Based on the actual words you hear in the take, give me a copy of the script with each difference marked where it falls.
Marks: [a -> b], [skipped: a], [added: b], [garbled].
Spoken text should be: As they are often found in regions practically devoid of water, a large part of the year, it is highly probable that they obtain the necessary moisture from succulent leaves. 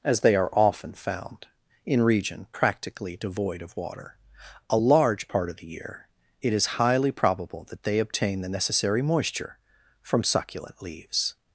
As they are often found in [regions -> region] practically devoid of water, a large part of the year, it is highly probable that they obtain the necessary moisture from succulent leaves.